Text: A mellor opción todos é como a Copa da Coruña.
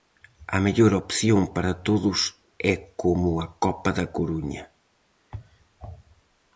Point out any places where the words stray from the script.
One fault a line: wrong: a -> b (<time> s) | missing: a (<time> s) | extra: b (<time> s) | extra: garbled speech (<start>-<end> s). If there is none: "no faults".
extra: para (1.5 s)